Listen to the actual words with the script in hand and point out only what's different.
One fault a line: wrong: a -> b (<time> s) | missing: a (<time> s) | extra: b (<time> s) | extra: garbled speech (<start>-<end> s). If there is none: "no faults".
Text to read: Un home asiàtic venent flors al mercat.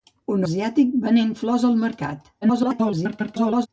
missing: home (0.5 s)
extra: garbled speech (2.4-3.7 s)